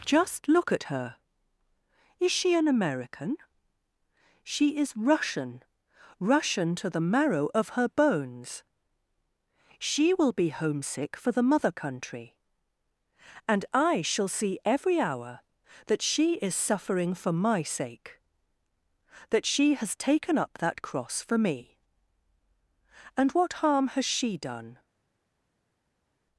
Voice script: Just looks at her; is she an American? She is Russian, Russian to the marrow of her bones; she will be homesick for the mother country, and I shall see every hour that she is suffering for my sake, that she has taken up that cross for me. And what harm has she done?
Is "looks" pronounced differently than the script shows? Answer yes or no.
yes